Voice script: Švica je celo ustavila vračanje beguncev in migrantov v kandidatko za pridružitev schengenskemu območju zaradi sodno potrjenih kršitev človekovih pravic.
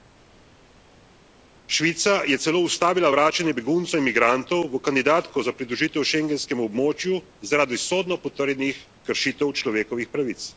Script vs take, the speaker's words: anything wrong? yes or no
no